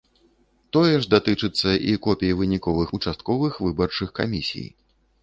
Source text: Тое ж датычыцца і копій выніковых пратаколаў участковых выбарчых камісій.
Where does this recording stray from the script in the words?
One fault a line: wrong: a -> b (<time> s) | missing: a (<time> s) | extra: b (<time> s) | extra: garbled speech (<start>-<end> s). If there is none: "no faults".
missing: пратаколаў (3.0 s)